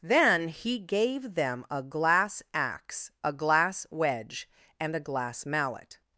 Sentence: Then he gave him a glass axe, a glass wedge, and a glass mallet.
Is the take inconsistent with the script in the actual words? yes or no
yes